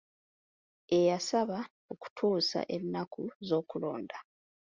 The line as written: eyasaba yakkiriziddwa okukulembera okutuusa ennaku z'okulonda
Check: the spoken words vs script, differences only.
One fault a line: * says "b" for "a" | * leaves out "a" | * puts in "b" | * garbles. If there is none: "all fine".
* leaves out "yakkiriziddwa okukulembera"